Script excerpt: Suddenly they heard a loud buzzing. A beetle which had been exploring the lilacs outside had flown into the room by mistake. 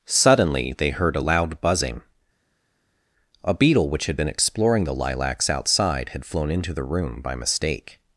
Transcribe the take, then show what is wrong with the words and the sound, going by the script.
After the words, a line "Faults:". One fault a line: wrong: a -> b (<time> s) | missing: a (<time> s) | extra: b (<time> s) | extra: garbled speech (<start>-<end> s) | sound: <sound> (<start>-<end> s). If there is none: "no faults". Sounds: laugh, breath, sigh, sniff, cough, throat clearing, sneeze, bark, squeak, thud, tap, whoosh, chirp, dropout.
Suddenly they heard a loud buzzing. A beetle which had been exploring the lilacs outside had flown into the room by mistake.
Faults:
no faults